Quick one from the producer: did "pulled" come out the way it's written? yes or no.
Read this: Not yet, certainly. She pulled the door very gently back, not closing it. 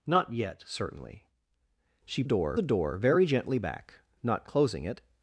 no